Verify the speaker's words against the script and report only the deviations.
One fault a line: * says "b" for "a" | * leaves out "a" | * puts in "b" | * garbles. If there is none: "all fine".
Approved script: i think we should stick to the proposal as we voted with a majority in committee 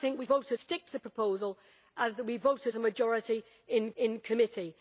* says "voted" for "should"
* leaves out "with"
* puts in "in"